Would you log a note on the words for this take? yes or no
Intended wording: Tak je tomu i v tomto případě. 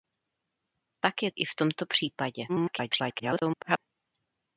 yes